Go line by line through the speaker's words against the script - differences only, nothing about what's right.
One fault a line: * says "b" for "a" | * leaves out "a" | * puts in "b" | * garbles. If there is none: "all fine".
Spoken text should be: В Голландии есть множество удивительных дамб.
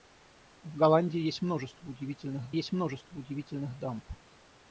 * puts in "есть множество удивительных"